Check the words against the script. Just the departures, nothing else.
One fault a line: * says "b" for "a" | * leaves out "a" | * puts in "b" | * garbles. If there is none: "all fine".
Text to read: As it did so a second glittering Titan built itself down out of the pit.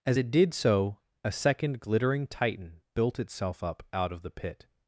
* says "up" for "down"